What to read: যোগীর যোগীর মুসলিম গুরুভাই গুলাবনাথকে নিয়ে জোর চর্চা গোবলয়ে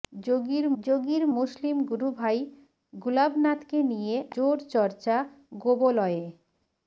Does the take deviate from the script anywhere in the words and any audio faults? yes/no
no